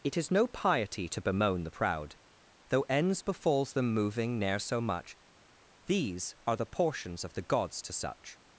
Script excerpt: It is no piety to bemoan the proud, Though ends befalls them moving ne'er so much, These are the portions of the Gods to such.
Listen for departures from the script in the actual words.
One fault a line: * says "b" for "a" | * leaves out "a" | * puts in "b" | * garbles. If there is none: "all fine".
all fine